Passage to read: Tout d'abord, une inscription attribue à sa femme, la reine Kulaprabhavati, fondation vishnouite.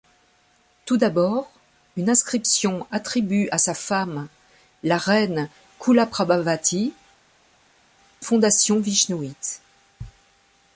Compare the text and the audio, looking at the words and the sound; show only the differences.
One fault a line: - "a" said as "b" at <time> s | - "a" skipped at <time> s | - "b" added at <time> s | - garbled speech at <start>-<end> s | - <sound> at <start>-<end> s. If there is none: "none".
none